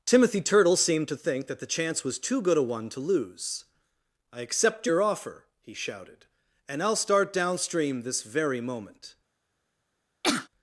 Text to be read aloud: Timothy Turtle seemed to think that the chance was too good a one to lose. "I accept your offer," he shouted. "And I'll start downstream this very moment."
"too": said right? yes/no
yes